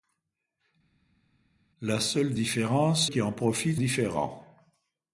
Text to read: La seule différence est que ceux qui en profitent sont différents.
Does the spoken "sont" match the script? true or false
false